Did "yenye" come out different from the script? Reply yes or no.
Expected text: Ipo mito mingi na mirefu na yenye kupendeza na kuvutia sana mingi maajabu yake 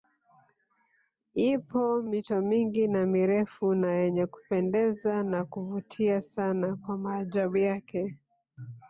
no